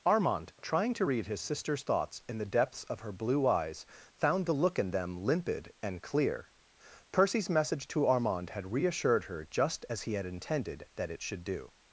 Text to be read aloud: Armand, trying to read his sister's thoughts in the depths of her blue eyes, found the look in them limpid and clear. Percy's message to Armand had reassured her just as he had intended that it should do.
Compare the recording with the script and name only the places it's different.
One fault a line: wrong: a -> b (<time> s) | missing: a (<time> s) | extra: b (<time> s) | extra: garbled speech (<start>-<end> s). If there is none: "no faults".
no faults